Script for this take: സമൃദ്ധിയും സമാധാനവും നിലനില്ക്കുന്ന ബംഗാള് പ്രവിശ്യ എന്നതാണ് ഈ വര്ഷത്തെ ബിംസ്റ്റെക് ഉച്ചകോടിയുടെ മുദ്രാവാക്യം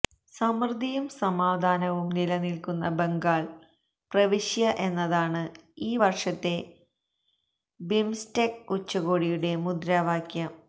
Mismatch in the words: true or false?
false